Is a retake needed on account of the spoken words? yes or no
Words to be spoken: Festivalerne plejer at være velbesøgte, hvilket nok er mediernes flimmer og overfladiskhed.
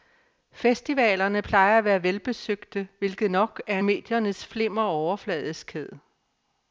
no